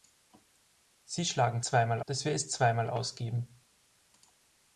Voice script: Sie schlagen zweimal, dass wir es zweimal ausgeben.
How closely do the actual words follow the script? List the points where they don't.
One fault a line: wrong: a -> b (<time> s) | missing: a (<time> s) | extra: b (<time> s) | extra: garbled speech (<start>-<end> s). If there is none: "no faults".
no faults